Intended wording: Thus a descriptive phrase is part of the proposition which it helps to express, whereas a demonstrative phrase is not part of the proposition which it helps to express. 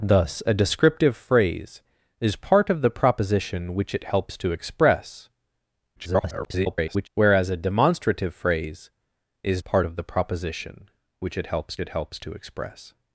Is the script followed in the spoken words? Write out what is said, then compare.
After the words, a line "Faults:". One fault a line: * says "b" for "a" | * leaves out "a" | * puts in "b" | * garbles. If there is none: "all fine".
Thus a descriptive phrase is part of the proposition which it helps to express, [garbled] whereas a demonstrative phrase is part of the proposition which it helps it helps to express.
Faults:
* garbles
* leaves out "not"
* puts in "it helps"